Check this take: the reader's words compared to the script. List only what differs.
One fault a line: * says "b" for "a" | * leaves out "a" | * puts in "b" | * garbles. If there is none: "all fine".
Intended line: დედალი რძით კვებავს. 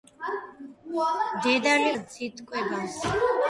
all fine